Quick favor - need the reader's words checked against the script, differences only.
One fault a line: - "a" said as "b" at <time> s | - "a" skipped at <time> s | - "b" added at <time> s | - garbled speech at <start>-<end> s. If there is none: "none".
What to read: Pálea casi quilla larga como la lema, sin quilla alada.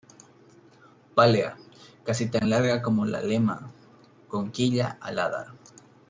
- "quilla" said as "tan" at 2.3 s
- "sin" said as "con" at 4.3 s